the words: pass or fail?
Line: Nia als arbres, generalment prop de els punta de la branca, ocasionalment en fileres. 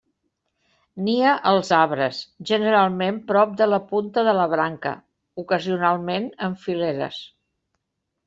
fail